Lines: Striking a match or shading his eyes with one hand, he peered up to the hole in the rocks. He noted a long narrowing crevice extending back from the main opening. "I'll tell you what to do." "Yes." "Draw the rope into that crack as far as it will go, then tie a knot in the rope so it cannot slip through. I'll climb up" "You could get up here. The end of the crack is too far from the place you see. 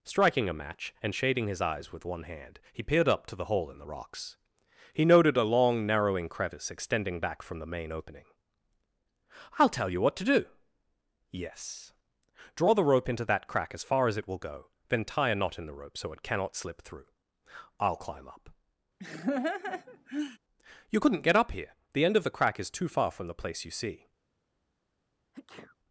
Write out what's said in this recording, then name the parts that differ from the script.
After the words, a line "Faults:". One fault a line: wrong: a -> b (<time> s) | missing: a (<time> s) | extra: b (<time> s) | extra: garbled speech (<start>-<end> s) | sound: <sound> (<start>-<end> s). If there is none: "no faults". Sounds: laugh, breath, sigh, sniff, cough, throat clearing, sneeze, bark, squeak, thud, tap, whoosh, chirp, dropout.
Striking a match and shading his eyes with one hand, he peered up to the hole in the rocks. He noted a long narrowing crevice extending back from the main opening. "I'll tell you what to do." "Yes." "Draw the rope into that crack as far as it will go, then tie a knot in the rope so it cannot slip through. I'll climb up" "You couldn't get up here. The end of the crack is too far from the place you see.
Faults:
wrong: or -> and (1.0 s)
sound: laugh (19.0-20.4 s)
wrong: could -> couldn't (21.0 s)
sound: sneeze (25.3-25.8 s)